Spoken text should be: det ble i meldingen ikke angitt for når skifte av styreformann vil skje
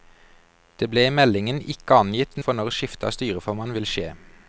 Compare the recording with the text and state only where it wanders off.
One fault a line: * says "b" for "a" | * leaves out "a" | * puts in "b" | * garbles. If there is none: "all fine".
all fine